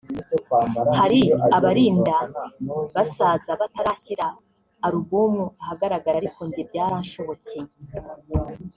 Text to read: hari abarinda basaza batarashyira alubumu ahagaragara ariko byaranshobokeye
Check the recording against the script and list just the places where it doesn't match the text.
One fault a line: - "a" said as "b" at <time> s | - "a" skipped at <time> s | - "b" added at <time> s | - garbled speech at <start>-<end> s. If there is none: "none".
- "njye" added at 6.5 s